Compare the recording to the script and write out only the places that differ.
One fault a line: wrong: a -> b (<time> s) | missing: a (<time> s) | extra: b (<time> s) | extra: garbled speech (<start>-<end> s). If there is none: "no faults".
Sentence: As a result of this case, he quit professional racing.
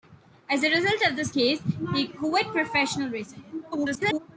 extra: garbled speech (3.7-4.2 s)